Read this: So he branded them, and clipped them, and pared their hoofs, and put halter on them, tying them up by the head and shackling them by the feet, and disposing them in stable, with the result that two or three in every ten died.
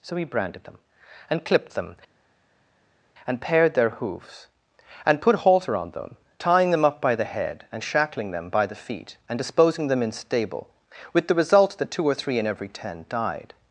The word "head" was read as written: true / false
true